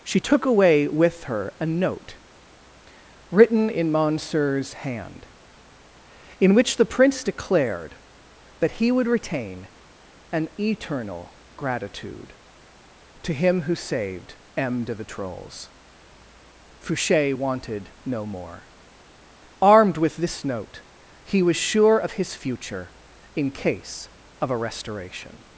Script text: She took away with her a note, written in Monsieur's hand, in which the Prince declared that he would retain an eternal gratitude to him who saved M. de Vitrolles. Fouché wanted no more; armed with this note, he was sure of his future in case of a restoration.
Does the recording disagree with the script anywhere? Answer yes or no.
no